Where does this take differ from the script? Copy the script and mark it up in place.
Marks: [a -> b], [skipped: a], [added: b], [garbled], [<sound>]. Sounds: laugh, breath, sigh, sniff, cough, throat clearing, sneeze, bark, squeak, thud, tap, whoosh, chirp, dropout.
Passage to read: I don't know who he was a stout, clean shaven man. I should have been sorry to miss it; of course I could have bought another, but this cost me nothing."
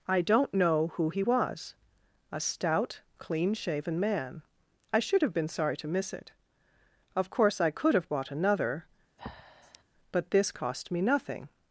I don't know who he was a stout, clean shaven man. I should have been sorry to miss it; of course I could have bought another, [breath] but this cost me nothing."